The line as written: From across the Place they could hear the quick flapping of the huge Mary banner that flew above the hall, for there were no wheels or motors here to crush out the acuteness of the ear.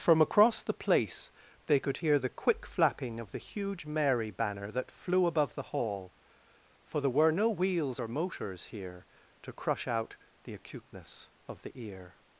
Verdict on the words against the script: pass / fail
pass